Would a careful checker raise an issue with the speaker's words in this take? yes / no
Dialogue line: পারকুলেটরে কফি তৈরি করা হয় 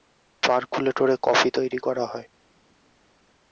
no